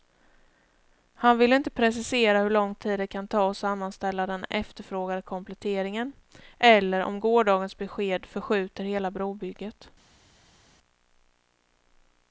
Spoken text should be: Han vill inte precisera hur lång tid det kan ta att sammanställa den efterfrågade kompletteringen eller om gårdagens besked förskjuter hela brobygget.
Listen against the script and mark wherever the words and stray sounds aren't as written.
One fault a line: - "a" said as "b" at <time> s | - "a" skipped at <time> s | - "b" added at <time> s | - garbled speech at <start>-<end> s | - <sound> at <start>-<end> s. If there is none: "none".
none